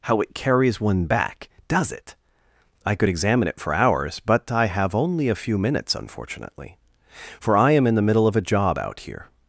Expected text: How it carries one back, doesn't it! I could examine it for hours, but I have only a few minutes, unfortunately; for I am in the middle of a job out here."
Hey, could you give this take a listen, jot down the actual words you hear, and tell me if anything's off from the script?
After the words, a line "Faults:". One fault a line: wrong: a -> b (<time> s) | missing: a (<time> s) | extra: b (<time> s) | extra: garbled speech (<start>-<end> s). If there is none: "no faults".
How it carries one back, does it! I could examine it for hours, but I have only a few minutes, unfortunately; for I am in the middle of a job out here."
Faults:
wrong: doesn't -> does (1.7 s)